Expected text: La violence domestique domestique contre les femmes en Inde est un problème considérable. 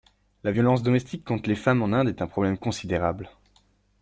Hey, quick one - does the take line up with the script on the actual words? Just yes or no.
no